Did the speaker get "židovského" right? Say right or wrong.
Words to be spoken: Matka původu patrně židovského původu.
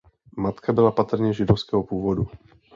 right